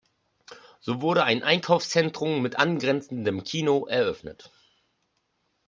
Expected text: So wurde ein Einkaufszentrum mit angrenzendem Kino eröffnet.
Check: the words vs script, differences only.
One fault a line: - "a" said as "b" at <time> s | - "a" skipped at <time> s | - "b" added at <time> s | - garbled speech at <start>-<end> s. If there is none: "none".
none